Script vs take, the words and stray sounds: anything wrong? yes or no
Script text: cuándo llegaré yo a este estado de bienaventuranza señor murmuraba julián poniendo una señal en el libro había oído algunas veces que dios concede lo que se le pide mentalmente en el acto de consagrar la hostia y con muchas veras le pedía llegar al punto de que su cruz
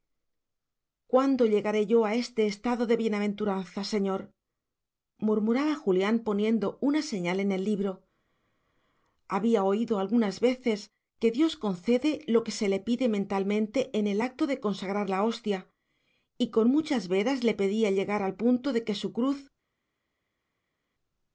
no